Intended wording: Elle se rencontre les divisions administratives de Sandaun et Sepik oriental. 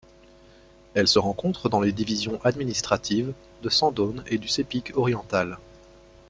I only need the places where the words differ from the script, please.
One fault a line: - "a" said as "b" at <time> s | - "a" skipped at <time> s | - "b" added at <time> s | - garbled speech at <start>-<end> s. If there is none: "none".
- "dans" added at 1.7 s
- "du" added at 4.4 s